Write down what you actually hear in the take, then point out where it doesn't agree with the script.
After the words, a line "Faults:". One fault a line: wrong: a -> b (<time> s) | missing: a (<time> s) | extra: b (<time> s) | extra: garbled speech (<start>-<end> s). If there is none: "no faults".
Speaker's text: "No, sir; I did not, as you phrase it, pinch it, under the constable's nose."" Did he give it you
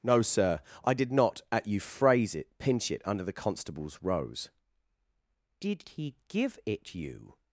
"No, sir; I did not, at you phrase it, pinch it, under the constable's rose."" Did he give it you
Faults:
wrong: as -> at (1.5 s)
wrong: nose -> rose (4.0 s)